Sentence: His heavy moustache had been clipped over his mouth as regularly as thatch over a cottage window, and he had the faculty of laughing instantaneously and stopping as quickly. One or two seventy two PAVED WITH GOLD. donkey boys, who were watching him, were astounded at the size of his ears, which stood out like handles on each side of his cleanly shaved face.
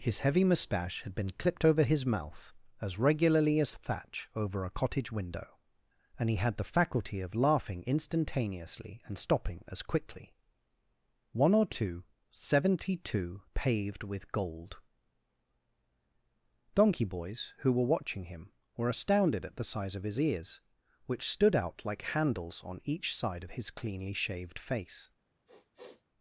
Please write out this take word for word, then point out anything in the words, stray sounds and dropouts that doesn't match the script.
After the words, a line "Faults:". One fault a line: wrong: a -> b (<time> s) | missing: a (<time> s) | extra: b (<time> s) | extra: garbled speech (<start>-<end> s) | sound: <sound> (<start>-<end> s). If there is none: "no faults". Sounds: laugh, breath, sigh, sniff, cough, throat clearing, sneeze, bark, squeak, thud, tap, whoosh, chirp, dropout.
His heavy moustache had been clipped over his mouth as regularly as thatch over a cottage window, and he had the faculty of laughing instantaneously and stopping as quickly. One or two seventy two PAVED WITH GOLD. donkey boys, who were watching him, were astounded at the size of his ears, which stood out like handles on each side of his cleanly shaved face.
Faults:
sound: sniff (25.5-26.0 s)